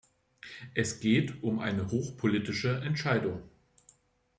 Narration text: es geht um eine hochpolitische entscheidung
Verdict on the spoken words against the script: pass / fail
pass